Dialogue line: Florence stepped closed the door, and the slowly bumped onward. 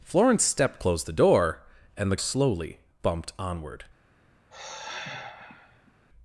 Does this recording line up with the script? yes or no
yes